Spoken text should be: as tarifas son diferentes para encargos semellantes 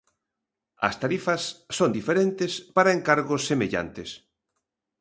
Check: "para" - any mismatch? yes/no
no